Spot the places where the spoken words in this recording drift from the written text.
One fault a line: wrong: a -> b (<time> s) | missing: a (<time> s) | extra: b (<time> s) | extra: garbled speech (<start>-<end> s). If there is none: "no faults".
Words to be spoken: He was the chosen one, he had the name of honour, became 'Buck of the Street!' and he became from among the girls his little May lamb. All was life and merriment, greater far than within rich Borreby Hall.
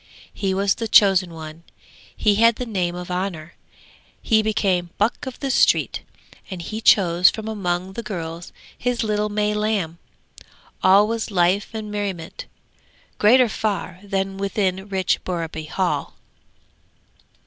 extra: he (4.2 s)
wrong: became -> chose (6.8 s)